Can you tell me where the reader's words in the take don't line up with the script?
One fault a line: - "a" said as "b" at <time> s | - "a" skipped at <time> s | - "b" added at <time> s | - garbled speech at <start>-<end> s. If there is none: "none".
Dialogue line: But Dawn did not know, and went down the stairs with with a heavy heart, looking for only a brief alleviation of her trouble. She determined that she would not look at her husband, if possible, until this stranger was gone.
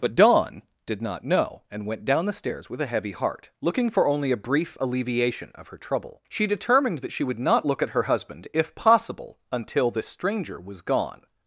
- "with" skipped at 2.8 s